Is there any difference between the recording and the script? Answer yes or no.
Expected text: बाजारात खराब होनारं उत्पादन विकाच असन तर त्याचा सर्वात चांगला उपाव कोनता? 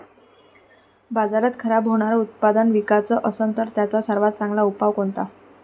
no